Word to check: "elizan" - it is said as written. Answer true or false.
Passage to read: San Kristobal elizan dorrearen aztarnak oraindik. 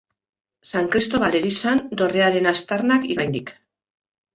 true